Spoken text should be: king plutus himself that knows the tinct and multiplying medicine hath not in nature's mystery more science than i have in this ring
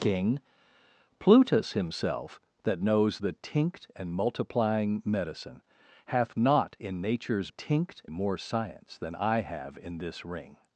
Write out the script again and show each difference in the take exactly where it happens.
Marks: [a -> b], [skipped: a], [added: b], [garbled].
king plutus himself that knows the tinct and multiplying medicine hath not in nature's [mystery -> tinct] more science than i have in this ring